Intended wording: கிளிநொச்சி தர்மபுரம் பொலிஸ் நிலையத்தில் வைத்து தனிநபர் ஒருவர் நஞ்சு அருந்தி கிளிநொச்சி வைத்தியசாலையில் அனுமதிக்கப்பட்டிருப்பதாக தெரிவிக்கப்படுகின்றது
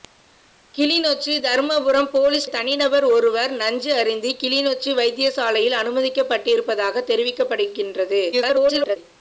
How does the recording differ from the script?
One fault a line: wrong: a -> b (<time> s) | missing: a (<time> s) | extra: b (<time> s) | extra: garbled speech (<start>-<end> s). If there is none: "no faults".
missing: நிலையத்தில் வைத்து (2.5 s)
extra: garbled speech (8.3-9.0 s)